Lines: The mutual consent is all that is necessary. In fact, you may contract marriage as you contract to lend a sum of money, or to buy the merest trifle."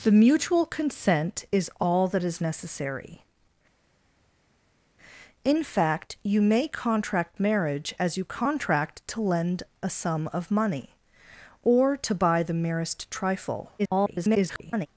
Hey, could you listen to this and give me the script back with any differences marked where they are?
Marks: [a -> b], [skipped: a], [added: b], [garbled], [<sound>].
The mutual consent is all that is necessary. In fact, you may contract marriage as you contract to lend a sum of money, or to buy the merest trifle." [garbled]